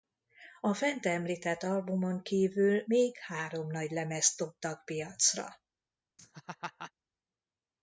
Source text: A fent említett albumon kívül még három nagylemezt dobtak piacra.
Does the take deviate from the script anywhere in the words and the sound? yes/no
yes